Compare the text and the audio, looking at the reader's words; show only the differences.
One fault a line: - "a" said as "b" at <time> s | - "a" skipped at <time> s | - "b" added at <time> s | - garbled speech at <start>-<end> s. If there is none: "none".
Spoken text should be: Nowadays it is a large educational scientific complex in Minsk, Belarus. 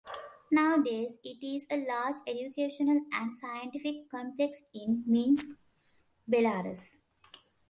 - "and" added at 3.1 s